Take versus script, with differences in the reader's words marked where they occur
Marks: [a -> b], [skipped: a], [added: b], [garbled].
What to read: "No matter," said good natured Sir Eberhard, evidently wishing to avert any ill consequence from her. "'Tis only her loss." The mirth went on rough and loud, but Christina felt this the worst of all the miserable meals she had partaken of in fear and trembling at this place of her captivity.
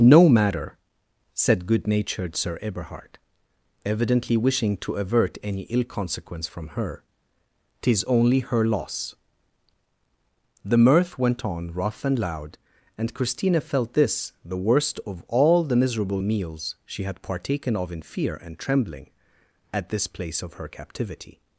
"No matter," said good natured Sir Eberhard, evidently wishing to avert any ill consequence from her. "'Tis only her loss." The mirth went on rough and loud, [but -> and] Christina felt this the worst of all the miserable meals she had partaken of in fear and trembling at this place of her captivity.